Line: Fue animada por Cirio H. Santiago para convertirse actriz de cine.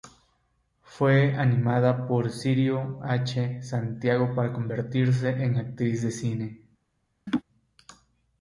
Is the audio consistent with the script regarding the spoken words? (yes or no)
no